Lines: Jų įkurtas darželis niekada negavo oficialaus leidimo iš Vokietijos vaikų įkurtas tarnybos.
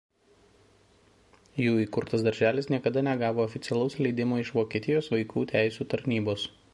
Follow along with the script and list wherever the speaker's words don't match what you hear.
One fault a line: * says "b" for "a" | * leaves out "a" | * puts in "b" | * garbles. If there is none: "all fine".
* says "teisių" for "įkurtas"